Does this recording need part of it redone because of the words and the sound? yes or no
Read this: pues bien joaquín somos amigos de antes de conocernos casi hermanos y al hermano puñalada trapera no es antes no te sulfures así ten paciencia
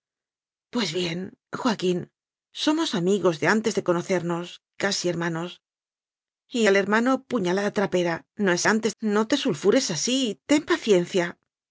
no